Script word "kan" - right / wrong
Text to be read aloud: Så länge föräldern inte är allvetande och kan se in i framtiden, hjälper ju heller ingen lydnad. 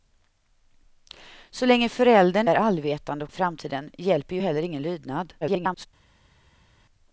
wrong